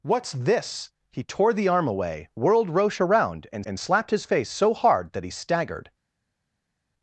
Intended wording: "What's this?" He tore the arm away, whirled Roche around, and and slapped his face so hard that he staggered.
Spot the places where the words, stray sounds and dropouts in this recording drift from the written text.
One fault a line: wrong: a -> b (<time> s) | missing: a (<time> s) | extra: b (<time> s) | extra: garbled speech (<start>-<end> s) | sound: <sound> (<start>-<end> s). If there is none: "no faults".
no faults